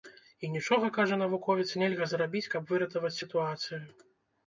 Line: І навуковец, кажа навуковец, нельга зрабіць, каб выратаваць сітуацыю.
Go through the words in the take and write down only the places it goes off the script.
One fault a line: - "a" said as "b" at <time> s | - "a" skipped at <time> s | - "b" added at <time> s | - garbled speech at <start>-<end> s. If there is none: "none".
- "навуковец" said as "нічога" at 0.6 s